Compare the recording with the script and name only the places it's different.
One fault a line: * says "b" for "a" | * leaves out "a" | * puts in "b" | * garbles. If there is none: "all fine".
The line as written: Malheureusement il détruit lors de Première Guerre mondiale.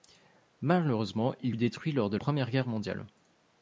all fine